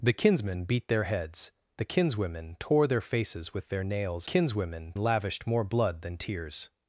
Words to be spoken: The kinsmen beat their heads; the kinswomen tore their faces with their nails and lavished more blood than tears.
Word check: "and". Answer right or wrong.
wrong